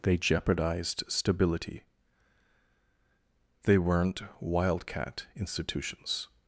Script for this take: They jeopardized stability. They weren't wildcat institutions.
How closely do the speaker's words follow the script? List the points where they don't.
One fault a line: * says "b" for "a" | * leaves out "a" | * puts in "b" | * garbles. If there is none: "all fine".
all fine